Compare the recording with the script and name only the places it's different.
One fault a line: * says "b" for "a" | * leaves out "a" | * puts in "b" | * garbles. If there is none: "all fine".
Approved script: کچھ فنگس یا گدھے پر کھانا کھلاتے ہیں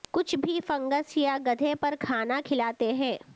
* puts in "بھی"